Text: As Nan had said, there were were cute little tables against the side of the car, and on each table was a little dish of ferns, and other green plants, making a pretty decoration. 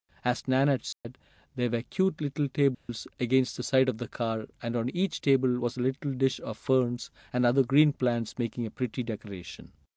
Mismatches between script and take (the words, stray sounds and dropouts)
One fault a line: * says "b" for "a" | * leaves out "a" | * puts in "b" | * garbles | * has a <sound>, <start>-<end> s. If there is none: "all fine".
* has a dropout, 0.9-1.0 s
* leaves out "were"
* has a dropout, 2.7-2.9 s